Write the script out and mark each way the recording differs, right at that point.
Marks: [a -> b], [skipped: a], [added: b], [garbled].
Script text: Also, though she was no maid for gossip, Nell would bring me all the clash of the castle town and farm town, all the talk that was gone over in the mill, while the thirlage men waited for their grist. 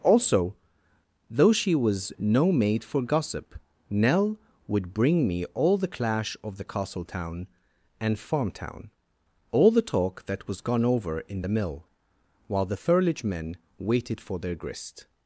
Also, though she was no maid for gossip, Nell would bring me all the clash of the castle town and farm town, all the talk that was gone over in the mill, while the thirlage men waited for their grist.